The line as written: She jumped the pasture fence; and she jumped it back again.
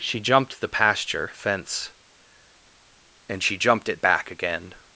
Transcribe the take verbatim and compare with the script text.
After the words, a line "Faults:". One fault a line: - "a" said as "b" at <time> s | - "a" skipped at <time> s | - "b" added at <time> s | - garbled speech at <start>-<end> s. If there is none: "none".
She jumped the pasture fence; and she jumped it back again.
Faults:
none